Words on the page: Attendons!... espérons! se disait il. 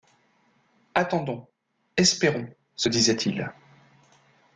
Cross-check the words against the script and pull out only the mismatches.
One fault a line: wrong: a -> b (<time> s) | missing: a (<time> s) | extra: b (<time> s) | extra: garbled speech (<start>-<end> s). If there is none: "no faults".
no faults